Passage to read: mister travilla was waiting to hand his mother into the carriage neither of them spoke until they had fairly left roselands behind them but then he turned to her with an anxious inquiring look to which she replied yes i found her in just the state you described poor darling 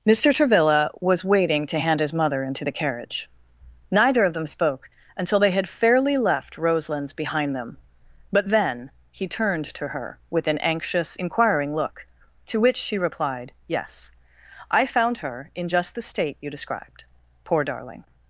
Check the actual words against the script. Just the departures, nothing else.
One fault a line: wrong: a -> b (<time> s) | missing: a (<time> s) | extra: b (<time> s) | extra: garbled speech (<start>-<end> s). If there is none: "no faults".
no faults